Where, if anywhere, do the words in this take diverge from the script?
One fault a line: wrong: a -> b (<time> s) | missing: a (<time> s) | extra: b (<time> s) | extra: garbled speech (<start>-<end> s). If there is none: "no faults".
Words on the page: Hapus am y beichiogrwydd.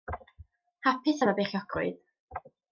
no faults